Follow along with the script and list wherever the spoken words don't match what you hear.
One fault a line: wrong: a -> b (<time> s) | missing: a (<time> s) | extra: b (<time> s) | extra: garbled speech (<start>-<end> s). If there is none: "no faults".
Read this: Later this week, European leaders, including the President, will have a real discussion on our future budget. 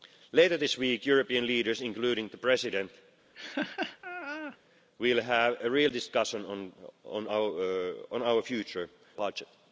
no faults